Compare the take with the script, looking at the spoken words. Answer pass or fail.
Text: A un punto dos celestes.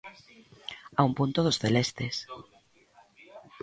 pass